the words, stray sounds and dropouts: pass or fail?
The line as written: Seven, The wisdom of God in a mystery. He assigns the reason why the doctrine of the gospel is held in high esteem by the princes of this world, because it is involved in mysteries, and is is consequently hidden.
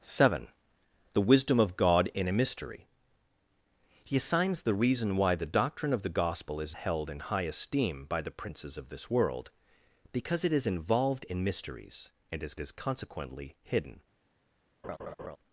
fail